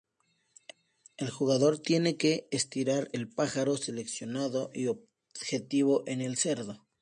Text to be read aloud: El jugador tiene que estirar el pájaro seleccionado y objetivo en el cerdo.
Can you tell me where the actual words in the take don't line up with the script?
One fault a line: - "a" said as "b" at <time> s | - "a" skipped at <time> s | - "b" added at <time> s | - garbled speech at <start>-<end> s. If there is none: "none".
none